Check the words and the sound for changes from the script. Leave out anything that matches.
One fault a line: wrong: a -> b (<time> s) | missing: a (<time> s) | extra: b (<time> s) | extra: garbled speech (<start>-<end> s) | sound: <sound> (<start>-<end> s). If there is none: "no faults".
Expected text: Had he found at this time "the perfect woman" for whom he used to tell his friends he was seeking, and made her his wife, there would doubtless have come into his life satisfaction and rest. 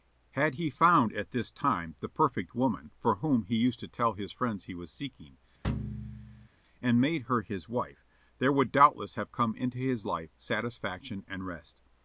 sound: thud (5.6-6.5 s)